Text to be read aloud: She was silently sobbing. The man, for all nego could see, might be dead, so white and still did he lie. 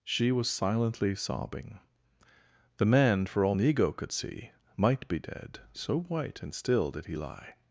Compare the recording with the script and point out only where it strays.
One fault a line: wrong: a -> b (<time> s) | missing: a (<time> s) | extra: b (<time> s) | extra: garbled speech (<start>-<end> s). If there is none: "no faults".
no faults